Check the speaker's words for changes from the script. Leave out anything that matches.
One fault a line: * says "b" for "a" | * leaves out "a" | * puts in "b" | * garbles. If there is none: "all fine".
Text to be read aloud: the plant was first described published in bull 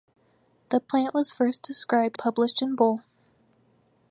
all fine